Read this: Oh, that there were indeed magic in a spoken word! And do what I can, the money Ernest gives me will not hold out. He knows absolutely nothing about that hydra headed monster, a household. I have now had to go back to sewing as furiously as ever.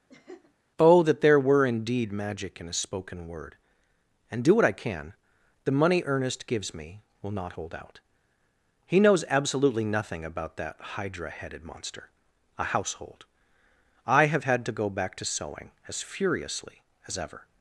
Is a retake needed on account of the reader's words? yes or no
yes